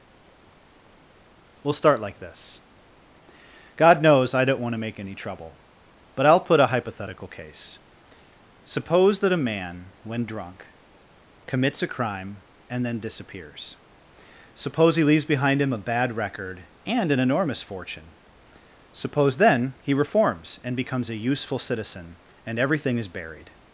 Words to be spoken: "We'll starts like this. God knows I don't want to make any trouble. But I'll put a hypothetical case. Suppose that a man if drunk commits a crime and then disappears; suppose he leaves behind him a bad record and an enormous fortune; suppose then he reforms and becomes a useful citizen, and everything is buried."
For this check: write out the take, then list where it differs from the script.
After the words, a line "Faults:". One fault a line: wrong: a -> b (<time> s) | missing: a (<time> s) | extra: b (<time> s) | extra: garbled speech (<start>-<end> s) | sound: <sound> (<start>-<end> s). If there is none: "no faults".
"We'll start like this. God knows I don't want to make any trouble. But I'll put a hypothetical case. Suppose that a man when drunk commits a crime and then disappears; suppose he leaves behind him a bad record and an enormous fortune; suppose then he reforms and becomes a useful citizen, and everything is buried."
Faults:
wrong: starts -> start (1.7 s)
wrong: if -> when (10.0 s)